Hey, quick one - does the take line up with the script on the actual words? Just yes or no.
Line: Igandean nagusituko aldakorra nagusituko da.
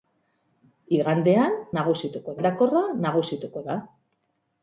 yes